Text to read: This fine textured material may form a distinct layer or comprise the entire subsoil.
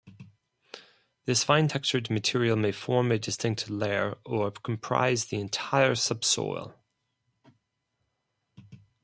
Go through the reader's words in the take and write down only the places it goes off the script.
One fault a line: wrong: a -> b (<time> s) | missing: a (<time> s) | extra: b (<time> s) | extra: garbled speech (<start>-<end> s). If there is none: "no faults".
no faults